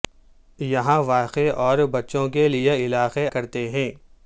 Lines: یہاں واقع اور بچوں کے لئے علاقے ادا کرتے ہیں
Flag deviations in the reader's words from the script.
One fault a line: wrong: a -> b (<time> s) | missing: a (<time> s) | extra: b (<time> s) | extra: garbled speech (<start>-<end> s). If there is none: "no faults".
missing: ادا (3.3 s)